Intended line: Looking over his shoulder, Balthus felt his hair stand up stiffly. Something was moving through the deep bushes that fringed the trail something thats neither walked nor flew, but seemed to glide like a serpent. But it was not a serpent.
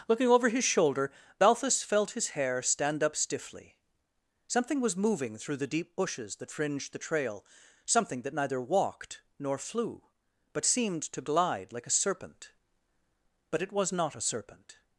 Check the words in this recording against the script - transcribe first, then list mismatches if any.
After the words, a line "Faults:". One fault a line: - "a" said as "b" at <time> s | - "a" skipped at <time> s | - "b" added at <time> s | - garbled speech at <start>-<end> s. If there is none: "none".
Looking over his shoulder, Balthus felt his hair stand up stiffly. Something was moving through the deep bushes that fringed the trail something that neither walked nor flew, but seemed to glide like a serpent. But it was not a serpent.
Faults:
- "thats" said as "that" at 8.2 s